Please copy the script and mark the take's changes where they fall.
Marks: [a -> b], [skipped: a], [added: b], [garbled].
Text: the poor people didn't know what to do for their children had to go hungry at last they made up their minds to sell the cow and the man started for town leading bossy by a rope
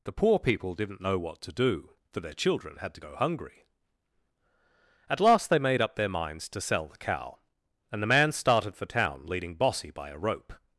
the poor people didn't know what to do for their children had to go hungry at last they made up their minds to sell the cow and the man started for town leading bossy by a rope